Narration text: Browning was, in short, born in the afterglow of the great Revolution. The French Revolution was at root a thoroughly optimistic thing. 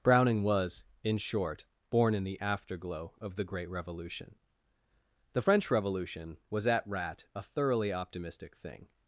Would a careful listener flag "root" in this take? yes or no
yes